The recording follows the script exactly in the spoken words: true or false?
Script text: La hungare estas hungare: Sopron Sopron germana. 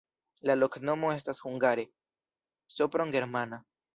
false